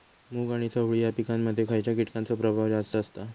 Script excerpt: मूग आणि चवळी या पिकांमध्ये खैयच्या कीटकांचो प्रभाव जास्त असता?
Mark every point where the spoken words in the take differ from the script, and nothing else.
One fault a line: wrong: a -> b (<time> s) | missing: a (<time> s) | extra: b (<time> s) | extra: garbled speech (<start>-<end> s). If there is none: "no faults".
no faults